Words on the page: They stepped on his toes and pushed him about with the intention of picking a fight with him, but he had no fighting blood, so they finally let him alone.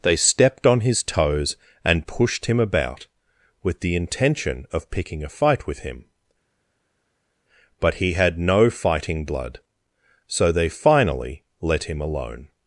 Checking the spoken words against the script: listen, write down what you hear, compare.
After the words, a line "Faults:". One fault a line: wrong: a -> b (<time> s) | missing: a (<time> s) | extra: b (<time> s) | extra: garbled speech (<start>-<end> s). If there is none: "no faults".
They stepped on his toes and pushed him about with the intention of picking a fight with him, but he had no fighting blood, so they finally let him alone.
Faults:
no faults